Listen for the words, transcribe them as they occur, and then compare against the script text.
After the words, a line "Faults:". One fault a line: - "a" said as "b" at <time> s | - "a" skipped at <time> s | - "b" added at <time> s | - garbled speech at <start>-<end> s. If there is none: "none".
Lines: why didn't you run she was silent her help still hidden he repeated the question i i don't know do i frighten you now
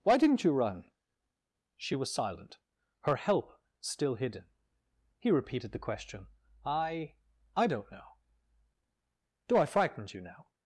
why didn't you run she was silent her help still hidden he repeated the question i i don't know do i frighten you now
Faults:
none